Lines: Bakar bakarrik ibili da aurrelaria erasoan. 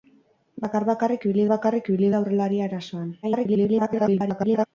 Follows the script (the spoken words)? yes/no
no